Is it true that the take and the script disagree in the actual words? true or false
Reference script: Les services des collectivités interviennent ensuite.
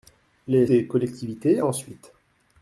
true